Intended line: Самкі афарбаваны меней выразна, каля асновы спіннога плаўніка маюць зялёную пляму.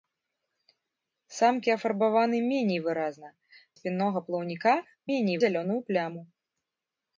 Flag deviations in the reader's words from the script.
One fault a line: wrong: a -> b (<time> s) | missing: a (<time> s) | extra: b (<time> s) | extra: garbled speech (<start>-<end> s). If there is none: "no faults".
missing: каля асновы (3.3 s)
wrong: маюць -> меней (5.1 s)